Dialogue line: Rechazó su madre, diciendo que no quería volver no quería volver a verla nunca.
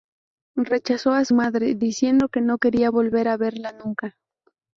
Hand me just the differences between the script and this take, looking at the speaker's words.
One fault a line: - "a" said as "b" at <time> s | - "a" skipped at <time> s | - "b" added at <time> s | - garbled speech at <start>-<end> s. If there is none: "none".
- "a" added at 1.1 s
- "no quería volver" skipped at 3.3 s